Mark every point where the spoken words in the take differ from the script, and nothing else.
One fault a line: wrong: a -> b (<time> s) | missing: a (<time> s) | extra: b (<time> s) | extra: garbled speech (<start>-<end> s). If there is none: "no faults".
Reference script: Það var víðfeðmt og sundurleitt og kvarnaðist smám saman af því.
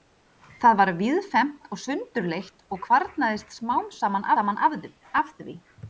extra: saman (4.4 s)